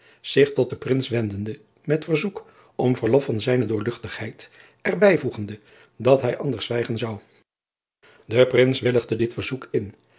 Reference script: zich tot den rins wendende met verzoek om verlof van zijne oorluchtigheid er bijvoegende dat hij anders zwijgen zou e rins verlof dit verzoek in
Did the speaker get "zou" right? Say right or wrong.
right